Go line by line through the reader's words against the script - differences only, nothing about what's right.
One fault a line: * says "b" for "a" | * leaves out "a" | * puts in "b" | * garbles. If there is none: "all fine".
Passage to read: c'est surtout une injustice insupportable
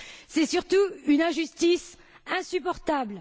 all fine